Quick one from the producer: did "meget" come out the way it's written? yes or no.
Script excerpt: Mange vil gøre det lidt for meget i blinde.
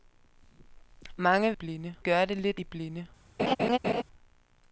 no